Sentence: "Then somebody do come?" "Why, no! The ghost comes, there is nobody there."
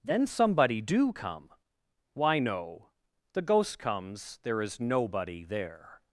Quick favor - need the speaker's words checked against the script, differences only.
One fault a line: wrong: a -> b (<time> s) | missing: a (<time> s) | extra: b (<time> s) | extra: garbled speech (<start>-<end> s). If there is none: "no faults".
no faults